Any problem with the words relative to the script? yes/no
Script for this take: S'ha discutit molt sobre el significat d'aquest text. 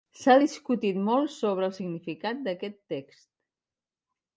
no